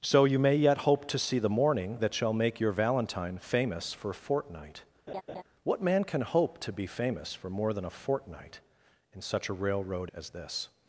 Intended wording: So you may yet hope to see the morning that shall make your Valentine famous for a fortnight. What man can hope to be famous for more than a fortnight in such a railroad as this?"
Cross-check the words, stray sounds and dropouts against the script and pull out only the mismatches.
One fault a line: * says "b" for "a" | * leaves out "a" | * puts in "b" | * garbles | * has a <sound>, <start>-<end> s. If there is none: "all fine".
* has a laugh, 5.1-5.4 s